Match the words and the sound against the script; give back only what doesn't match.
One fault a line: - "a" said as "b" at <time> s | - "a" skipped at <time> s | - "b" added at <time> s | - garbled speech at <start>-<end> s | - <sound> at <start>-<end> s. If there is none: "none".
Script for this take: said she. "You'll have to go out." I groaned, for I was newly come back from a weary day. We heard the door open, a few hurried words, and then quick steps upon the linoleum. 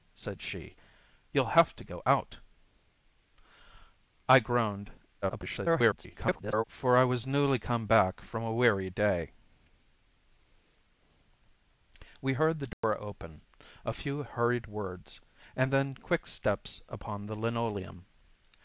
- garbled speech at 5.2-6.6 s
- dropout at 12.7-12.8 s